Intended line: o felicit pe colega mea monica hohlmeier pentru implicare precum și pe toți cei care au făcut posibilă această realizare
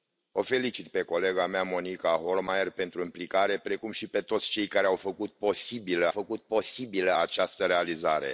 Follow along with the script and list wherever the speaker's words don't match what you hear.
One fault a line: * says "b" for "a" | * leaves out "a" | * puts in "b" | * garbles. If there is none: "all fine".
* puts in "făcut posibilă"